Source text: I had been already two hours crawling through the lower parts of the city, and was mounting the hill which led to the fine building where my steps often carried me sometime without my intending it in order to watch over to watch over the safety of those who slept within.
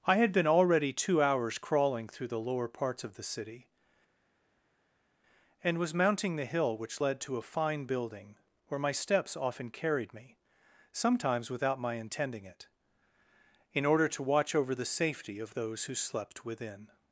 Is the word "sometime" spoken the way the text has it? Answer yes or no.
no